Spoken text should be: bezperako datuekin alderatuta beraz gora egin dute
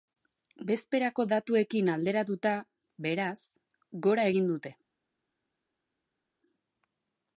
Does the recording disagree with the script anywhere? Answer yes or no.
no